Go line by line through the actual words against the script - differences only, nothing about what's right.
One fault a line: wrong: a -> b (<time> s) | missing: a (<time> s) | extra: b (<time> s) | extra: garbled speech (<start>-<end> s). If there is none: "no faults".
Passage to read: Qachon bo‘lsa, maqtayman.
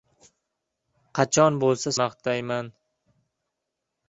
no faults